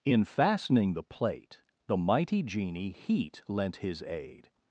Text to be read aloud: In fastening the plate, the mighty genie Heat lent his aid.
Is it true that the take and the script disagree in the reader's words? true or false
false